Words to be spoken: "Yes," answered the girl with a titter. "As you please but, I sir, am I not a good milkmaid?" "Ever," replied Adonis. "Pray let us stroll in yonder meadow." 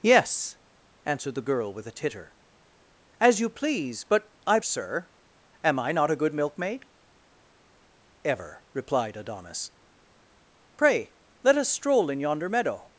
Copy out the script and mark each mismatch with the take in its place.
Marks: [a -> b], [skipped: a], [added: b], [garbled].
"Yes," answered the girl with a titter. "As you please but, I sir, am I not a good milkmaid?" "Ever," replied Adonis. "Pray let us stroll in yonder meadow."